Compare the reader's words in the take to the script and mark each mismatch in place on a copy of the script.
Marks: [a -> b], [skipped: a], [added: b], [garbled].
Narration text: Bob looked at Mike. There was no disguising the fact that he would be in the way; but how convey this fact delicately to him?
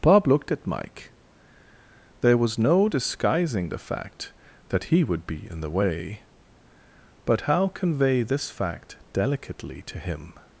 Bob looked at Mike. There was no disguising the fact that he would be in the way; but how convey this fact delicately to him?